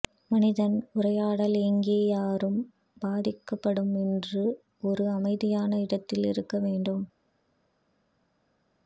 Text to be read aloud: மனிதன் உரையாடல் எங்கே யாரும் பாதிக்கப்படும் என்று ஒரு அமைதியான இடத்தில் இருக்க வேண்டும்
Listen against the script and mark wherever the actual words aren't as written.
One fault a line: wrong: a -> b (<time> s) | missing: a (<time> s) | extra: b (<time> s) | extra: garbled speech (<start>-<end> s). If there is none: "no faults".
no faults